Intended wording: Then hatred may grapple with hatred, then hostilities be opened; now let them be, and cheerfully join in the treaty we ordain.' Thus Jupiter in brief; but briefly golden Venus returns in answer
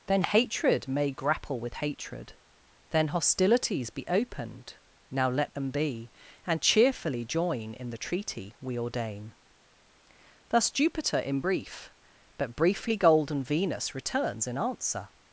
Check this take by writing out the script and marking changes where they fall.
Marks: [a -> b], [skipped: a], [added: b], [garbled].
Then hatred may grapple with hatred, then hostilities be opened; now let them be, and cheerfully join in the treaty we ordain.' Thus Jupiter in brief; but briefly golden Venus returns in answer